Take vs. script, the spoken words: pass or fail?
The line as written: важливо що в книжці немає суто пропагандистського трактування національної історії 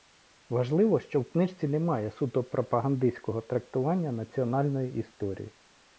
pass